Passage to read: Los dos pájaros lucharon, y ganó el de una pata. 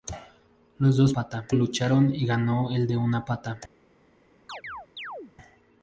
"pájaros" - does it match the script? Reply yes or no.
no